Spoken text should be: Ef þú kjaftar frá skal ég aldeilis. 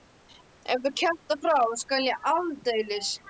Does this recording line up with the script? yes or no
yes